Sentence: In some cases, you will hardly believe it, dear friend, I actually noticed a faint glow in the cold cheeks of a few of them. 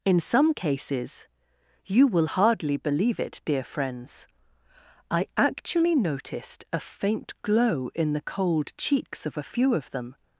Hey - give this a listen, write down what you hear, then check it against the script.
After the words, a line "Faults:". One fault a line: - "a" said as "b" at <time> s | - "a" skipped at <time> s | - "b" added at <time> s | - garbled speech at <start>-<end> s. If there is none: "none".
In some cases, you will hardly believe it, dear friends, I actually noticed a faint glow in the cold cheeks of a few of them.
Faults:
- "friend" said as "friends" at 3.6 s